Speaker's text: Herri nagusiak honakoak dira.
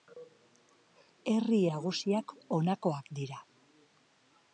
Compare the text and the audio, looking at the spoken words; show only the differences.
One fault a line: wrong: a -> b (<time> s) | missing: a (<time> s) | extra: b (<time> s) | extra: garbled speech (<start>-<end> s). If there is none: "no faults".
no faults